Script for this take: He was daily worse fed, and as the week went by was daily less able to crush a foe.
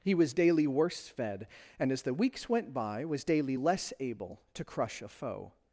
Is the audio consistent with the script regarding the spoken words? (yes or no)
no